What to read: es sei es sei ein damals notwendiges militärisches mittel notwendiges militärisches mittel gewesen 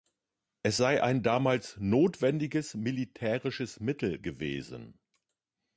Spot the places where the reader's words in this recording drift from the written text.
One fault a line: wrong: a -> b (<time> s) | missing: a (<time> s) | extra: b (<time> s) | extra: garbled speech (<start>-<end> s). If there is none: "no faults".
missing: es sei (1.0 s)
missing: notwendiges militärisches mittel (4.2 s)